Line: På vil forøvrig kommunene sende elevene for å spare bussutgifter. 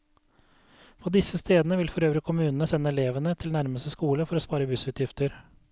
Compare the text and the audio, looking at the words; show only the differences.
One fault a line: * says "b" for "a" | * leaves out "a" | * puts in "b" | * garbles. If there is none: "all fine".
* puts in "disse stedene"
* puts in "til nærmeste skole"